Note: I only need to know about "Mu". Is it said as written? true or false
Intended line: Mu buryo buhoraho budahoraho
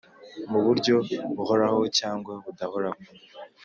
true